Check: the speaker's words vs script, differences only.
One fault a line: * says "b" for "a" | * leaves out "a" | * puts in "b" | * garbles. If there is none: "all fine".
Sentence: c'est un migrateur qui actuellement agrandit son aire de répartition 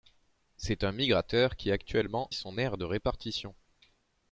* leaves out "agrandit"